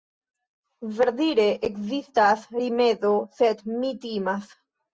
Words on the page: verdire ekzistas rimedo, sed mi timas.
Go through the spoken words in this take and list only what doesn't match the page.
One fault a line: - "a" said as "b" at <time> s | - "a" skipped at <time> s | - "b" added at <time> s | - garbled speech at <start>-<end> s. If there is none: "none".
none